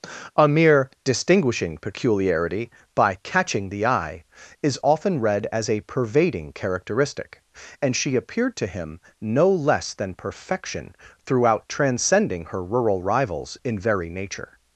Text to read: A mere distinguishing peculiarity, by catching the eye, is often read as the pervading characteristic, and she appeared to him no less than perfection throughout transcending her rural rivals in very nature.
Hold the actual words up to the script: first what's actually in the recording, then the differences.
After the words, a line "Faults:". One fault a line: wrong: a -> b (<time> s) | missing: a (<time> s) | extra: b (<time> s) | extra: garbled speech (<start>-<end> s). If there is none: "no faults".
A mere distinguishing peculiarity, by catching the eye, is often read as a pervading characteristic, and she appeared to him no less than perfection throughout transcending her rural rivals in very nature.
Faults:
wrong: the -> a (5.7 s)